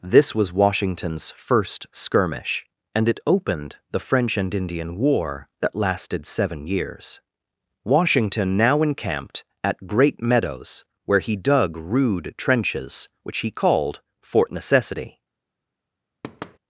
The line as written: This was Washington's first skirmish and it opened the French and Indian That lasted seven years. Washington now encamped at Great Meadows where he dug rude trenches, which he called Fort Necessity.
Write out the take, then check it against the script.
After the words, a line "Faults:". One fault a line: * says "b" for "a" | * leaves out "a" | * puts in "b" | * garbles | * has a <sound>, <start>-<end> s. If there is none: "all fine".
This was Washington's first skirmish and it opened the French and Indian War that lasted seven years. Washington now encamped at Great Meadows where he dug rude trenches, which he called Fort Necessity.
Faults:
* puts in "War"
* has a thud, 16.2-16.6 s